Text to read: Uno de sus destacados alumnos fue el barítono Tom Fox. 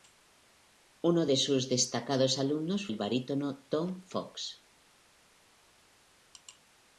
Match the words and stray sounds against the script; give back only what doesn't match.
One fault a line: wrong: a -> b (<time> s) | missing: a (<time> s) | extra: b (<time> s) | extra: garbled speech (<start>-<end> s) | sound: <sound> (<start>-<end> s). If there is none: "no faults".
missing: fue (2.9 s)